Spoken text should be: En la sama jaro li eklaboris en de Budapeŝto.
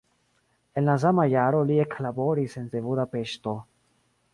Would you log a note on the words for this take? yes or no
no